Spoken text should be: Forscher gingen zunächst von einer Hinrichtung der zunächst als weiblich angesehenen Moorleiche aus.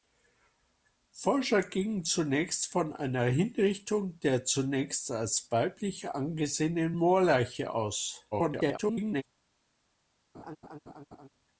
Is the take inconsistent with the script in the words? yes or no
yes